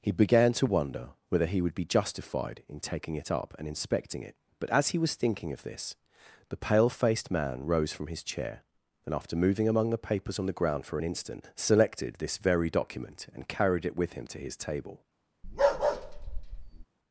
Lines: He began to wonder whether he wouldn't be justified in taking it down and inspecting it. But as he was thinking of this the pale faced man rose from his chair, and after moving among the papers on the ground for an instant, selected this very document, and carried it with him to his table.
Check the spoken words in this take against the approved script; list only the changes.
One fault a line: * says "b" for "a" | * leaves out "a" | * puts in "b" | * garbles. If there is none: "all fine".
* says "would" for "wouldn't"
* says "up" for "down"